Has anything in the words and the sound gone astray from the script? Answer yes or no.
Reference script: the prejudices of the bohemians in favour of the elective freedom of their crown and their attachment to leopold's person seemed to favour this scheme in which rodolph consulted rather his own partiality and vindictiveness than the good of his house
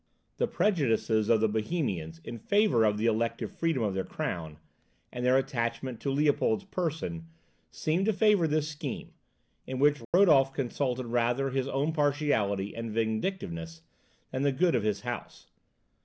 yes